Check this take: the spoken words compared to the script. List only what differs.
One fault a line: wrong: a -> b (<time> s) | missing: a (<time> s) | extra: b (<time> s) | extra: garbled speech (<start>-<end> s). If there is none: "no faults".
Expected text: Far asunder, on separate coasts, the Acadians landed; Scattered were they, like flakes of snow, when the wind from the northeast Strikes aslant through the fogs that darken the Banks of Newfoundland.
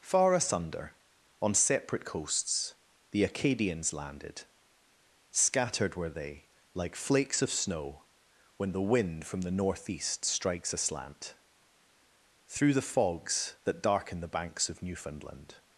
no faults